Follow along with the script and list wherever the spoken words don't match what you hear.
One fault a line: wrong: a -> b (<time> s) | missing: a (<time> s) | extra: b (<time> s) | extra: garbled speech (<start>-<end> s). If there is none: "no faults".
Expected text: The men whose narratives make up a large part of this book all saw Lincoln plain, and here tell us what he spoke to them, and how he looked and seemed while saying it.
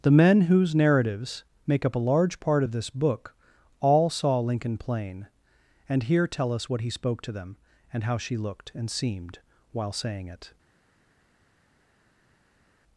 wrong: he -> she (8.2 s)